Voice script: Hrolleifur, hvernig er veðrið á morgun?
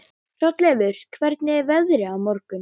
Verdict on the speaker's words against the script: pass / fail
pass